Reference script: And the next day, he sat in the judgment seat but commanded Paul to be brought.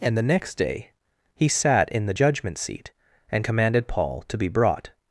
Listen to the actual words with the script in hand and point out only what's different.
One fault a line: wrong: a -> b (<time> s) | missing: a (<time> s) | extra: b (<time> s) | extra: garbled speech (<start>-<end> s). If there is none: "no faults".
wrong: but -> and (3.3 s)